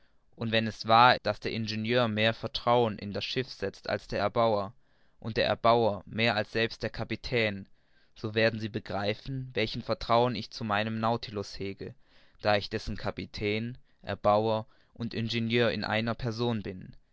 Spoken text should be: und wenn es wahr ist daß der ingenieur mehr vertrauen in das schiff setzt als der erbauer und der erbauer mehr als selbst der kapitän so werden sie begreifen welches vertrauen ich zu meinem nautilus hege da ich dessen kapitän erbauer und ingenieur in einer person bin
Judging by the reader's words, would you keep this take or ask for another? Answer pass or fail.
fail